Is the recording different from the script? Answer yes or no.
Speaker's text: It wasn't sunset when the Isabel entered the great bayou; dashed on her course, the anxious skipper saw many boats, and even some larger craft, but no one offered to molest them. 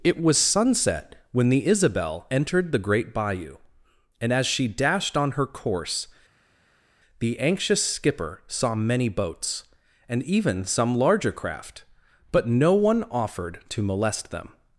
yes